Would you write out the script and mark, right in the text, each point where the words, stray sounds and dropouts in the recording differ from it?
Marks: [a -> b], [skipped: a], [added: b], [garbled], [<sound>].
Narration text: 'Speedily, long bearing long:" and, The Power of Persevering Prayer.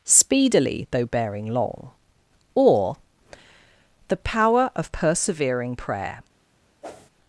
'Speedily, [long -> though] bearing long:" [and, -> or] The Power of Persevering Prayer. [whoosh]